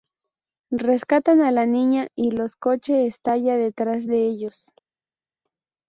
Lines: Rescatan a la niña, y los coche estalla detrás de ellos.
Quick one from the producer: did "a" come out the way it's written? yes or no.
yes